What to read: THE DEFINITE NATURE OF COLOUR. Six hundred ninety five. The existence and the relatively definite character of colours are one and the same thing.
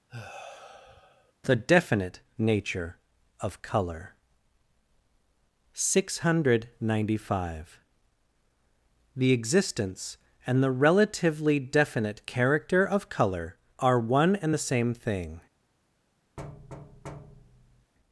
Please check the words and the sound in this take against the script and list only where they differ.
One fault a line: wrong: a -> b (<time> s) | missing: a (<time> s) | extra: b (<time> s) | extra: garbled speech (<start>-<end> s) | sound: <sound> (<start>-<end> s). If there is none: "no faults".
sound: sigh (0.1-1.3 s)
wrong: colours -> colour (13.1 s)
sound: thud (16.4-17.9 s)